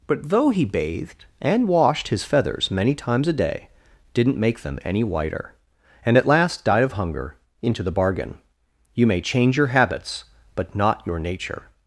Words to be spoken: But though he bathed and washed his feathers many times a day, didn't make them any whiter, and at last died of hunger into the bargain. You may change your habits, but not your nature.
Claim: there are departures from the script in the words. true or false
false